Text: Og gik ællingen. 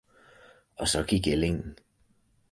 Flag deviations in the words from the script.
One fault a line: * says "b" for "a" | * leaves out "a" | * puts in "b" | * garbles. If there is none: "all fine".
* puts in "så"